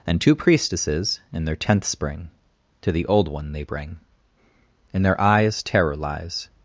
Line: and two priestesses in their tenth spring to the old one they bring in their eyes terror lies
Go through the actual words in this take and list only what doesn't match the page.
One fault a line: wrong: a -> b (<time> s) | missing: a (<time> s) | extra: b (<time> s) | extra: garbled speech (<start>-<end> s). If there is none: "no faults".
no faults